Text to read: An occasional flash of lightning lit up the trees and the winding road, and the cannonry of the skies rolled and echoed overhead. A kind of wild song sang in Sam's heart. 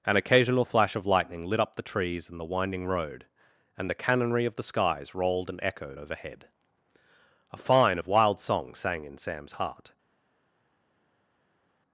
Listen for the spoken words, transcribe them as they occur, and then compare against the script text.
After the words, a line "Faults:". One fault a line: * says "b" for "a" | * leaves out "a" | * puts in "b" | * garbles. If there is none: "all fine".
An occasional flash of lightning lit up the trees and the winding road, and the cannonry of the skies rolled and echoed overhead. A fine of wild song sang in Sam's heart.
Faults:
* says "fine" for "kind"